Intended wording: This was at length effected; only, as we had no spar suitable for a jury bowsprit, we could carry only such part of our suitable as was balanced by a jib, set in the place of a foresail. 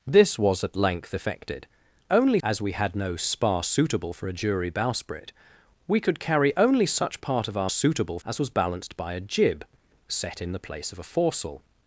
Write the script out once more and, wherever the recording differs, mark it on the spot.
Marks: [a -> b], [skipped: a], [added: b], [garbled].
This was at length effected; only, as we had no spar suitable for a jury bowsprit, we could carry only such part of our suitable as was balanced by a jib, set in the place of a foresail.